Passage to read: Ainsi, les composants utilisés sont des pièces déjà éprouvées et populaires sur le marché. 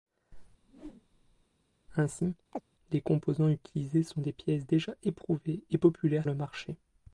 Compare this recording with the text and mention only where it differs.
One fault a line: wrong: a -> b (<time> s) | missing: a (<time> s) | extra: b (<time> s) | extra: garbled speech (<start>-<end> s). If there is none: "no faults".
missing: sur (6.3 s)